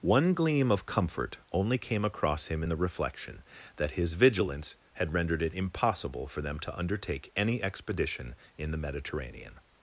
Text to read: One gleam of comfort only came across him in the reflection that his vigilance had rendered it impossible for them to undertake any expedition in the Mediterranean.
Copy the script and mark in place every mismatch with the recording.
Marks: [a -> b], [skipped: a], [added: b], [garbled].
One gleam of comfort only came across him in the reflection that his vigilance had rendered it impossible for them to undertake any expedition in the Mediterranean.